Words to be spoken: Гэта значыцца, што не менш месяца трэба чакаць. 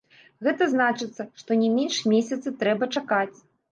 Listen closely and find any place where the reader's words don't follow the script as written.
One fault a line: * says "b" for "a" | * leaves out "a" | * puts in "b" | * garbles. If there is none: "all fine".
all fine